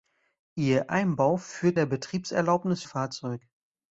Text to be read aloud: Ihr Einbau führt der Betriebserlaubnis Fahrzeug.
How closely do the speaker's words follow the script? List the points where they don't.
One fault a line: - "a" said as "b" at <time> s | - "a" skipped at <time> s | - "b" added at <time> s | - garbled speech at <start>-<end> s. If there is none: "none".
none